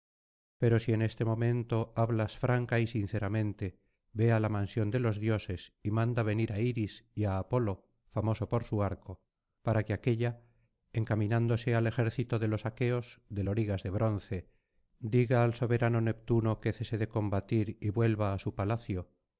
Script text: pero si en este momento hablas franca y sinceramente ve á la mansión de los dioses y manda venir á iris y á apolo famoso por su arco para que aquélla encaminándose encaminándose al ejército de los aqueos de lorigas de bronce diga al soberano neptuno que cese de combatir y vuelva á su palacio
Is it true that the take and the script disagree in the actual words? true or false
true